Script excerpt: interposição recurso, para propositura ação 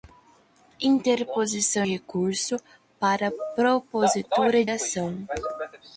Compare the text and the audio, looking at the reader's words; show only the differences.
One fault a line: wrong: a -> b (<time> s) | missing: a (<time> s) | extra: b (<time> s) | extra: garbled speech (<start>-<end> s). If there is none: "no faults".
no faults